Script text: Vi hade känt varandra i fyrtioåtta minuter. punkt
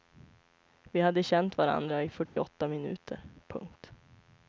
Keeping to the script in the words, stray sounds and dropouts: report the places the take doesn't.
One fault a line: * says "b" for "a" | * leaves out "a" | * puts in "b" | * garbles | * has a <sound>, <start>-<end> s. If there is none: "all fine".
* has a dropout, 2.2-2.4 s